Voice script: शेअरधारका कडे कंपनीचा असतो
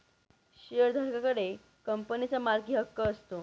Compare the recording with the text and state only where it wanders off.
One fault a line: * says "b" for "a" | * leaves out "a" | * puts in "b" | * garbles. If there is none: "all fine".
* puts in "मालकीहक्क"